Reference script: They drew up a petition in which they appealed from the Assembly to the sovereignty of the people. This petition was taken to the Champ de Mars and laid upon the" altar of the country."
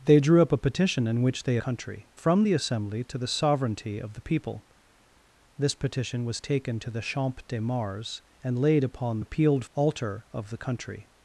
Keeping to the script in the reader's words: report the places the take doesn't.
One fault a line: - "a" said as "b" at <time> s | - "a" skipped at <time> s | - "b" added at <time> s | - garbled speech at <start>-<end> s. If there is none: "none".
- "appealed" said as "country" at 1.6 s
- "the" said as "appealed" at 9.2 s